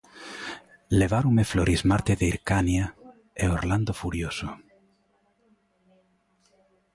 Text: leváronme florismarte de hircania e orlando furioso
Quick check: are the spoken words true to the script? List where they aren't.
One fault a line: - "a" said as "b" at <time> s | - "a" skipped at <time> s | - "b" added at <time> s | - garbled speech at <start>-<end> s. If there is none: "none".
none